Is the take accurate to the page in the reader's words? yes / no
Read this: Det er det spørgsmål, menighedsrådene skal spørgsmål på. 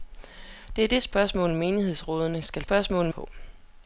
yes